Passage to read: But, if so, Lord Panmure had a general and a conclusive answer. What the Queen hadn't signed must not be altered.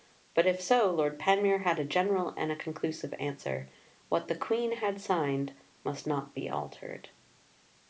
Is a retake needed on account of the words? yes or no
yes